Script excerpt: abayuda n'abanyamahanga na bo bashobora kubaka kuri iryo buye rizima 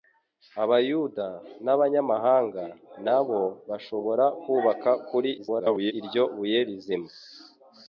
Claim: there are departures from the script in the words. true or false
true